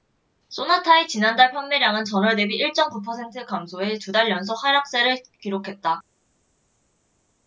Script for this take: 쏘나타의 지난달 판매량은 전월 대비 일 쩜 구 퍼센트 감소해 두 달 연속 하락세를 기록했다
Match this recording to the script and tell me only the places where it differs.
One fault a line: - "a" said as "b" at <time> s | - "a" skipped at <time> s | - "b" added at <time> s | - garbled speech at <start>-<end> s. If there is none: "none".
none